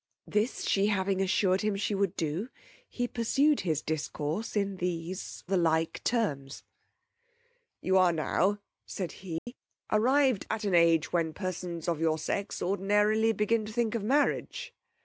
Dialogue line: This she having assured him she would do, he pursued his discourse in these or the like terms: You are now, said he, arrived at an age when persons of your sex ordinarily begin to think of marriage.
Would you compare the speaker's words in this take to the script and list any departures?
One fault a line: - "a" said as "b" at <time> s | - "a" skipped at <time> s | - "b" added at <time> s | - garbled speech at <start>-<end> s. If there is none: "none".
- "or" skipped at 5.4 s